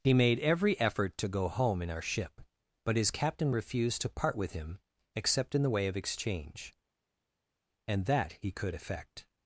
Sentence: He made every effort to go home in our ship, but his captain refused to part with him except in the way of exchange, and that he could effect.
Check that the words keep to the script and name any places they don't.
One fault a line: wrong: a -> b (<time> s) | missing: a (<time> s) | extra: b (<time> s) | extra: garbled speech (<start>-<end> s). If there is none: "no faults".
no faults